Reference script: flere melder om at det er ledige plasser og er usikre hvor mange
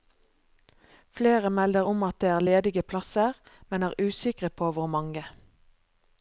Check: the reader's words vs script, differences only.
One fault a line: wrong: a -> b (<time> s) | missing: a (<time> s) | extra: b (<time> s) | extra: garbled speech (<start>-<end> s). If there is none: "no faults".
wrong: og -> men (3.7 s)
extra: på (4.5 s)